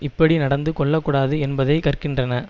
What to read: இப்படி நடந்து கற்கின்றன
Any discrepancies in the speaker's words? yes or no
yes